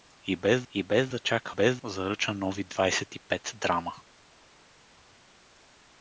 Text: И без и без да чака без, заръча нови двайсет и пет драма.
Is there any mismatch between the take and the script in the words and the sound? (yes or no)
no